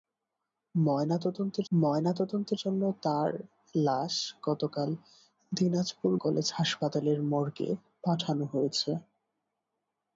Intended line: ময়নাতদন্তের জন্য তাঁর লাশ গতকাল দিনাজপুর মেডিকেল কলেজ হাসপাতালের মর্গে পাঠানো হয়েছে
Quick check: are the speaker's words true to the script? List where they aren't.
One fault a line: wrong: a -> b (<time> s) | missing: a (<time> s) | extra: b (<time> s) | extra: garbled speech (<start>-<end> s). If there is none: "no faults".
extra: ময়নাতদন্তের (1.7 s)
missing: মেডিকেল (6.1 s)